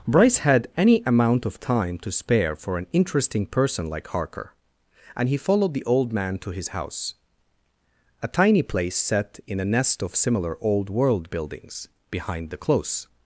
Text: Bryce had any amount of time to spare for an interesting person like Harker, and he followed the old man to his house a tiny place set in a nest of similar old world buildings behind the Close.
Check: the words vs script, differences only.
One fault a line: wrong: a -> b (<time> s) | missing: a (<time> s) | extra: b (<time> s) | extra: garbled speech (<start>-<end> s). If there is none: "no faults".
no faults